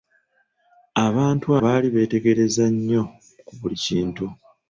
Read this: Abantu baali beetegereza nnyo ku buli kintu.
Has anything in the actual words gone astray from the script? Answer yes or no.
no